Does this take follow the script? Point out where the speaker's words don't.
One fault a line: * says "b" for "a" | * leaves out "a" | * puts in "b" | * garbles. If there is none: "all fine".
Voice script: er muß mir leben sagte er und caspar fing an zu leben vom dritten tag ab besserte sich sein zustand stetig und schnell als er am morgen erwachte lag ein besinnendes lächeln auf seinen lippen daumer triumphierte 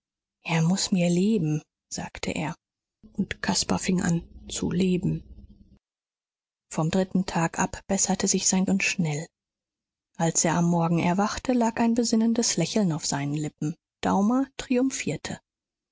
* leaves out "zustand stetig"